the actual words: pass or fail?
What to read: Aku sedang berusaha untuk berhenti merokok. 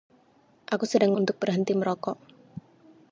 fail